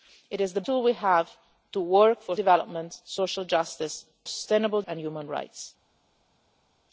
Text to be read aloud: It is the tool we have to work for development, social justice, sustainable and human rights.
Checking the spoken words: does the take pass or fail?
pass